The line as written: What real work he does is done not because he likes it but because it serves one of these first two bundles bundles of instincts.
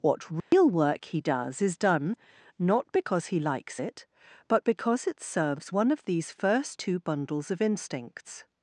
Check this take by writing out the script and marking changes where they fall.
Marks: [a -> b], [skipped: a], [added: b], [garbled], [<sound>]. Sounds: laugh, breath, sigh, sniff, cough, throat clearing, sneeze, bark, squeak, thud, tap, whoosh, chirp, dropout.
What real [dropout] work he does is done not because he likes it but because it serves one of these first two bundles [skipped: bundles] of instincts.